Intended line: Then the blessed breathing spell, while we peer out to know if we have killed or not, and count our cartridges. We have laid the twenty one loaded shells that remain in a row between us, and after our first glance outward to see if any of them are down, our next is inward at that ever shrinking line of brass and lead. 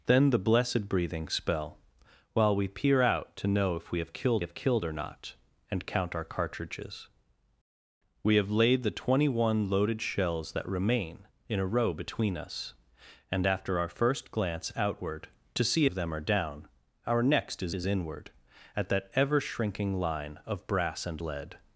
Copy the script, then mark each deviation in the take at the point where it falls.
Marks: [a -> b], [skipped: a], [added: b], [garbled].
Then the blessed breathing spell, while we peer out to know if we have killed [added: have killed] or not, and count our cartridges. We have laid the twenty one loaded shells that remain in a row between us, and after our first glance outward to see [skipped: if any] of them are down, our next is [added: is] inward at that ever shrinking line of brass and lead.